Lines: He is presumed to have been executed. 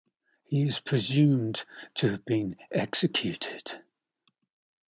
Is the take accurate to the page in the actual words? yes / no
yes